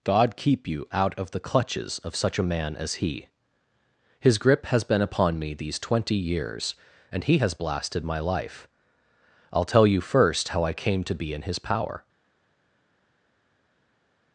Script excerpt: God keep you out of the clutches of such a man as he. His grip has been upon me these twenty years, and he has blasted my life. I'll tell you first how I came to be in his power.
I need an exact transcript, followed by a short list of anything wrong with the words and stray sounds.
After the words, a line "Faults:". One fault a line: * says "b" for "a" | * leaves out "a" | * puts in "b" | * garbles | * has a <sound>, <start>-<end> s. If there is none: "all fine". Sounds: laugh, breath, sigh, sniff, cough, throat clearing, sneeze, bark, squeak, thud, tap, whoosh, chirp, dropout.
God keep you out of the clutches of such a man as he. His grip has been upon me these twenty years, and he has blasted my life. I'll tell you first how I came to be in his power.
Faults:
all fine